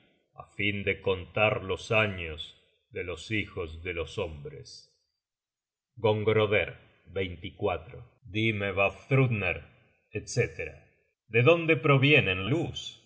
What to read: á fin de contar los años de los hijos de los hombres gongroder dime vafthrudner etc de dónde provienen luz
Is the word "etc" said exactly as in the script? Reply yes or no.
yes